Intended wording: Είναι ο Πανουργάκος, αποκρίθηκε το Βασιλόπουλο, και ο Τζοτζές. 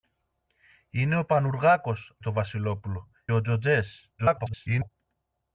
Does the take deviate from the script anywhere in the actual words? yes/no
yes